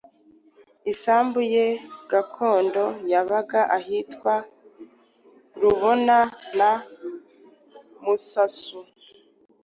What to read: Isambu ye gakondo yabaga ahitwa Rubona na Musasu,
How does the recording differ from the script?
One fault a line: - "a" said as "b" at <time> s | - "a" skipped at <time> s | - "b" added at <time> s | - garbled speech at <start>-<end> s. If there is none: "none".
none